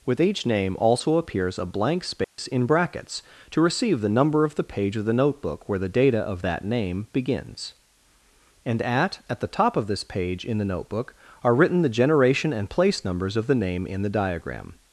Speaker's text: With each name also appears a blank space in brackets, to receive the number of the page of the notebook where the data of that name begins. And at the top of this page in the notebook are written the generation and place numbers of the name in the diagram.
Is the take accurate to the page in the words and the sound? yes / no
no